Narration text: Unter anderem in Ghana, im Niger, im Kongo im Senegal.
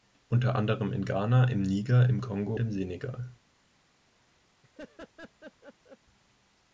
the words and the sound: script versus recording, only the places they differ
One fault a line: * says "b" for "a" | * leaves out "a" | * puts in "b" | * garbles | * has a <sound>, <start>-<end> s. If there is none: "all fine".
* has a laugh, 4.6-6.0 s